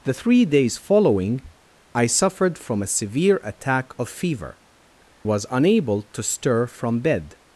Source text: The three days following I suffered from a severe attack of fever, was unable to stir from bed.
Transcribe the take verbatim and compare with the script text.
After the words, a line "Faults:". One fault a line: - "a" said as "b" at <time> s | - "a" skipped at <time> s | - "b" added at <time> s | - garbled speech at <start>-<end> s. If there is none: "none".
The three days following I suffered from a severe attack of fever, was unable to stir from bed.
Faults:
none